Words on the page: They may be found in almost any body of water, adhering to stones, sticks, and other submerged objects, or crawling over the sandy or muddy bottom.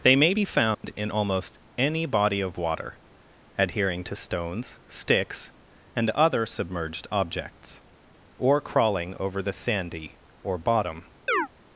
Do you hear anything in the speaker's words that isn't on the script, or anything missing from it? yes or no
yes